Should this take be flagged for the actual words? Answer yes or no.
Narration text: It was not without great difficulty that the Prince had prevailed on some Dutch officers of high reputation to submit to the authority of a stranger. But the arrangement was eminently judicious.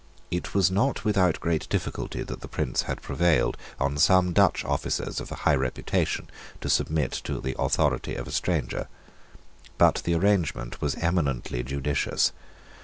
no